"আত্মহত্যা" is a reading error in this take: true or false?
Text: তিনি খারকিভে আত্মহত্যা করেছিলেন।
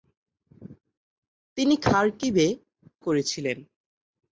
true